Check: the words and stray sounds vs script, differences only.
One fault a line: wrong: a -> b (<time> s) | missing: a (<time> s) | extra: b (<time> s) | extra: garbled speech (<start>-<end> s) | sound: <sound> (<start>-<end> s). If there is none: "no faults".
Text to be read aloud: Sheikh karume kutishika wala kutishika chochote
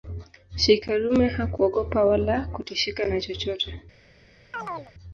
wrong: kutishika -> hakuogopa (1.3 s)
extra: na (3.1 s)
sound: chirp (4.5-4.9 s)